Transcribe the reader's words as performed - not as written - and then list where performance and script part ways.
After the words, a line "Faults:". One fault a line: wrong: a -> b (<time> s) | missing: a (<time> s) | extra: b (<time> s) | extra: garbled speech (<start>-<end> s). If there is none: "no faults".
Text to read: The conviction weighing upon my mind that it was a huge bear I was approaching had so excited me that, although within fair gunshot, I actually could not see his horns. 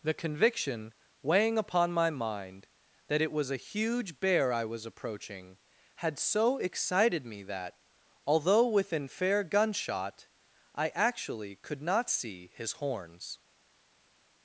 The conviction weighing upon my mind that it was a huge bear I was approaching had so excited me that, although within fair gunshot, I actually could not see his horns.
Faults:
no faults